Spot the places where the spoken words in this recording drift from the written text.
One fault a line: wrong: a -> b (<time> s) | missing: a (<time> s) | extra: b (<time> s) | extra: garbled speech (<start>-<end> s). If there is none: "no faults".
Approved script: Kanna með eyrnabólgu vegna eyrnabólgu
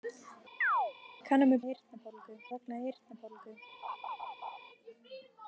no faults